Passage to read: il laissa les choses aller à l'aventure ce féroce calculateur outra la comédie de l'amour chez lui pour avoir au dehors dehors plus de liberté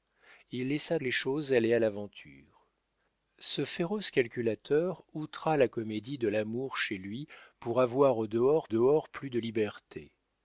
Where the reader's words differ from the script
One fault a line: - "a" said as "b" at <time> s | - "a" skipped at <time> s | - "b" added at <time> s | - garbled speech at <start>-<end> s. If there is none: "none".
none